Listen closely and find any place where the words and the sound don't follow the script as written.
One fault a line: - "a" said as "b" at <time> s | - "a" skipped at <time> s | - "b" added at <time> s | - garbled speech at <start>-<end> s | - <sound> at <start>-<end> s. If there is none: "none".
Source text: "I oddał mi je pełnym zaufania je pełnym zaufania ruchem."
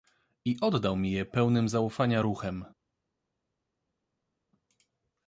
- "je pełnym zaufania" skipped at 2.2 s